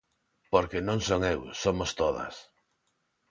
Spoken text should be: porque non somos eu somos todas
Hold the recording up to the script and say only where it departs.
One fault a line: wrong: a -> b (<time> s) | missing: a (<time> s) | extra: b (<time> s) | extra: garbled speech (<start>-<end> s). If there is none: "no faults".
wrong: somos -> son (1.1 s)